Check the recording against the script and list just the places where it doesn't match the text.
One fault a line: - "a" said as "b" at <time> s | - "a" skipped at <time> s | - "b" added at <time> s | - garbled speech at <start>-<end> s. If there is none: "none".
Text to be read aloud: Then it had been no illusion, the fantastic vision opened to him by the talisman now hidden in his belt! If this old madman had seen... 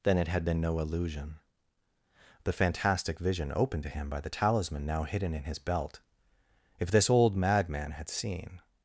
none